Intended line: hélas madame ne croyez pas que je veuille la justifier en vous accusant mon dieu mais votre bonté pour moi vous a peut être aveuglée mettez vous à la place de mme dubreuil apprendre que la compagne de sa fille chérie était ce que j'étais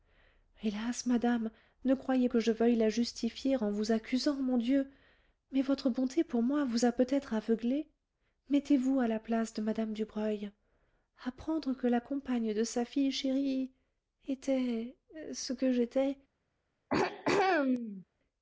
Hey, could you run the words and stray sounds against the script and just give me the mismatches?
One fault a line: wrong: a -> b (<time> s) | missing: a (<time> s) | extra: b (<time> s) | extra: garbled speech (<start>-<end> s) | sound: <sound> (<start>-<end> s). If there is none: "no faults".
missing: pas (2.3 s)
sound: throat clearing (16.9-18.0 s)